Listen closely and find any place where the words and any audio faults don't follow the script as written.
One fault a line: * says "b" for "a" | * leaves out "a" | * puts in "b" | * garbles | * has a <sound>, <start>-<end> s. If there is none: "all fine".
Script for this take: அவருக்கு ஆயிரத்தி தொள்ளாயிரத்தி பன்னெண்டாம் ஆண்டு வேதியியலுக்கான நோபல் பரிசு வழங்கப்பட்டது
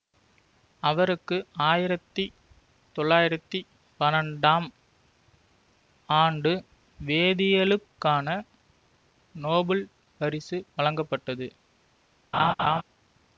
* has a laugh, 12.3-12.8 s